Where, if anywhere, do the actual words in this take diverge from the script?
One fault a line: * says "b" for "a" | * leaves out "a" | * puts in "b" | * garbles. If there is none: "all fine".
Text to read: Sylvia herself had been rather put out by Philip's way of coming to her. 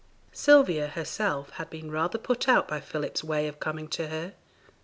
all fine